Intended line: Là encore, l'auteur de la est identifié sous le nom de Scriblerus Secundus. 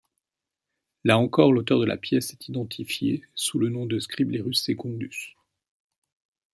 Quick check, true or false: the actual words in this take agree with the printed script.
false